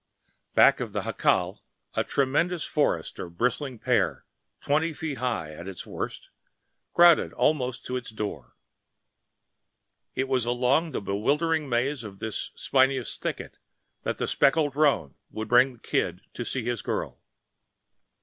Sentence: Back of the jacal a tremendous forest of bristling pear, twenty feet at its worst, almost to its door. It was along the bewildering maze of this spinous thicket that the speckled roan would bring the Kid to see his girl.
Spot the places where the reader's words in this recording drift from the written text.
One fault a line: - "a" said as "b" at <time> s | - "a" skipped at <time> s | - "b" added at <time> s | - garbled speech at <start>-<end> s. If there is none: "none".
- "high" added at 5.2 s
- "crowded" added at 6.9 s